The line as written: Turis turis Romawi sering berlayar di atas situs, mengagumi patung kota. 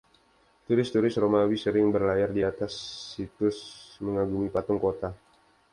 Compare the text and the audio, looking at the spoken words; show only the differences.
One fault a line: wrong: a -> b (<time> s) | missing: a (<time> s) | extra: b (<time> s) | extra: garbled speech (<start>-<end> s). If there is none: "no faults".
no faults